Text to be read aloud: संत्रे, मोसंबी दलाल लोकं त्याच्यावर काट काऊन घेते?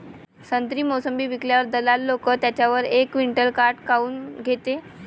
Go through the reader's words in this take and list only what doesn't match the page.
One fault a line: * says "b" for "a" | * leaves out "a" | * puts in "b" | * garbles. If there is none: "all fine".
* puts in "विकल्यावर"
* puts in "एक क्विंटल"